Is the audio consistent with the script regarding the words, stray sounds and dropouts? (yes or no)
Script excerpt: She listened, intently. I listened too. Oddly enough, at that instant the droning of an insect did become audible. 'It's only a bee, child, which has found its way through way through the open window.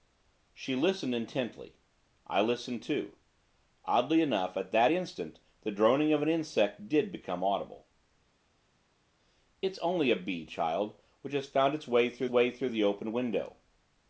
yes